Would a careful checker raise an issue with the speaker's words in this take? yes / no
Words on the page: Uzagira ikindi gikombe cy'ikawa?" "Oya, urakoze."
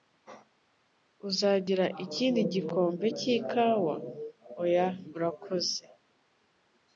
no